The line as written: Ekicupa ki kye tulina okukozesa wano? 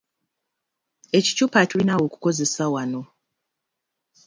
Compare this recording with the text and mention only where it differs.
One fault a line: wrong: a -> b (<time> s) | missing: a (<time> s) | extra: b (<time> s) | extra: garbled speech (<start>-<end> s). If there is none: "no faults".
missing: ki kye (1.6 s)